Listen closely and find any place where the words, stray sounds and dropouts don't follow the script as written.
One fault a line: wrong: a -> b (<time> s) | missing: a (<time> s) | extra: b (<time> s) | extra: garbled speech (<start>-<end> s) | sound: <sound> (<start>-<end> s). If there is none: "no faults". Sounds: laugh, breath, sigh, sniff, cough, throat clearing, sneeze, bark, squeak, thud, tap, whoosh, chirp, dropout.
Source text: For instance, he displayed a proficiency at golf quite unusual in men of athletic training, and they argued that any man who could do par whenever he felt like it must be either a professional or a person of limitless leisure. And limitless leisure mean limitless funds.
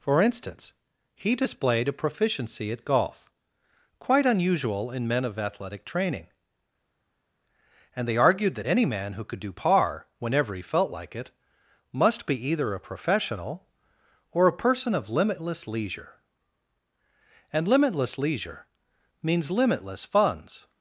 wrong: mean -> means (19.2 s)